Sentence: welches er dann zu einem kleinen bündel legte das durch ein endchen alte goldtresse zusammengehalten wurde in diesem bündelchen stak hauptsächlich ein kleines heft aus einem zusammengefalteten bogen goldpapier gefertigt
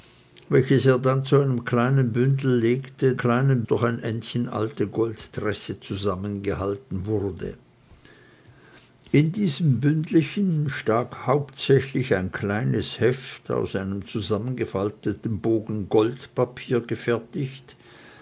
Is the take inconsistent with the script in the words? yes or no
yes